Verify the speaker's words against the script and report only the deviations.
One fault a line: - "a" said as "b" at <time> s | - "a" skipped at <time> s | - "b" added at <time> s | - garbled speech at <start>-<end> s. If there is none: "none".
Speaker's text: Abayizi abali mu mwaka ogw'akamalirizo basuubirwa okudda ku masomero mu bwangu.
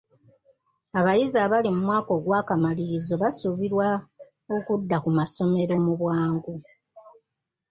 none